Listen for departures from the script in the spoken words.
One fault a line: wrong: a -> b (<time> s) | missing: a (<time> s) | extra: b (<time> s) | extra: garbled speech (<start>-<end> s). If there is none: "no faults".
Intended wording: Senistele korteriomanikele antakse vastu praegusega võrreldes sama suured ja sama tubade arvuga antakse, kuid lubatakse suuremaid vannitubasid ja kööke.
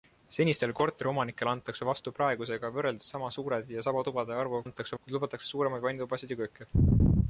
no faults